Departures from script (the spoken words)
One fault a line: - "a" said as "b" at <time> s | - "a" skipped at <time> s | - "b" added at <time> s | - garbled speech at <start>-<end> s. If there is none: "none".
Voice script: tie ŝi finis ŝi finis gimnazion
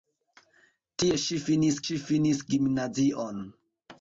none